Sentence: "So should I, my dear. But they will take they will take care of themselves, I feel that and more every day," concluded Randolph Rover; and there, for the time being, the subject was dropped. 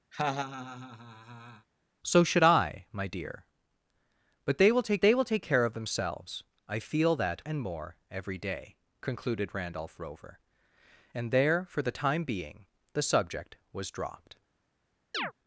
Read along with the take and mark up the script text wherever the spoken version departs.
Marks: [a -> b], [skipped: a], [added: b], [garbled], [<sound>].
[laugh] "So should I, my dear. But they will take they will take care of themselves, I feel that and more every day," concluded Randolph Rover; and there, for the time being, the subject was dropped. [chirp]